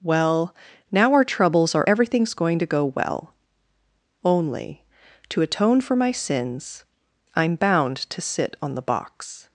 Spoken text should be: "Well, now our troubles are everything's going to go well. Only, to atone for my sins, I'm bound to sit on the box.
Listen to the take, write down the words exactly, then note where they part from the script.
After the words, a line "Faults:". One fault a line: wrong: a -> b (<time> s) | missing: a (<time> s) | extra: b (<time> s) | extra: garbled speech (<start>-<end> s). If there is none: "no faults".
"Well, now our troubles are everything's going to go well. Only, to atone for my sins, I'm bound to sit on the box.
Faults:
no faults